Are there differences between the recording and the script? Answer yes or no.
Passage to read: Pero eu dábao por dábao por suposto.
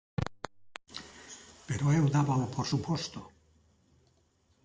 yes